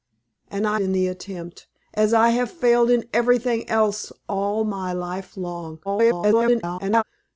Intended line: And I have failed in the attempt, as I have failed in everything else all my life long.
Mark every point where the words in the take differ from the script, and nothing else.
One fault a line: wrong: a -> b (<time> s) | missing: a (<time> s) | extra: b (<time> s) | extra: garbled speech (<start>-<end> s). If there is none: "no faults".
missing: have failed (0.8 s)
extra: garbled speech (5.8-7.0 s)